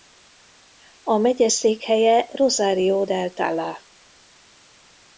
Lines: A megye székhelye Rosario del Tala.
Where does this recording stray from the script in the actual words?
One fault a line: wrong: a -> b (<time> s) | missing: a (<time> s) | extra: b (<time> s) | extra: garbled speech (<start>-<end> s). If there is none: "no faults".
no faults